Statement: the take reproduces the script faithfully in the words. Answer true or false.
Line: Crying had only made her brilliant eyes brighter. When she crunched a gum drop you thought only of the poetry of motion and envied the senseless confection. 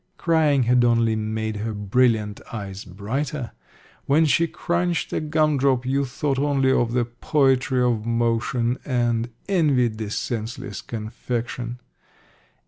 true